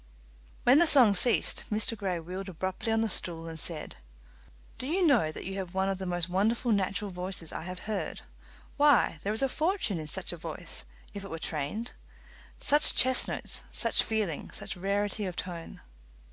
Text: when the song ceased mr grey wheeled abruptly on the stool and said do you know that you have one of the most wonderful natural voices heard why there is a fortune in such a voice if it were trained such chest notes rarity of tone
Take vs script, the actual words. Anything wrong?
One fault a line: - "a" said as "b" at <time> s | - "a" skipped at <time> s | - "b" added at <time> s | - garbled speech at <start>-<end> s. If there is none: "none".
- "i have" added at 7.5 s
- "such feeling such" added at 13.7 s